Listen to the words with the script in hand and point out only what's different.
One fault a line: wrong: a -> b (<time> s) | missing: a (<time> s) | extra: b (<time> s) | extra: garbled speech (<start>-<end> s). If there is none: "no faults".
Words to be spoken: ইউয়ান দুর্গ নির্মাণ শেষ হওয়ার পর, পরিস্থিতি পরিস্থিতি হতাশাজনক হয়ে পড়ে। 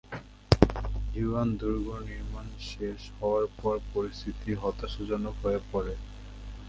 missing: পরিস্থিতি (4.5 s)